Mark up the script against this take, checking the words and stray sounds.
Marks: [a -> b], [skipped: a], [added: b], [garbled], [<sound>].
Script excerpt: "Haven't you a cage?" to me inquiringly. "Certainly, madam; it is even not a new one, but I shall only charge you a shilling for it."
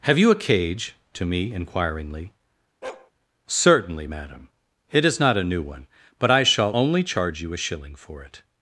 ["Haven't -> Have] you a cage?" to me inquiringly. [bark] "Certainly, madam; it is [skipped: even] not a new one, but I shall only charge you a shilling for it."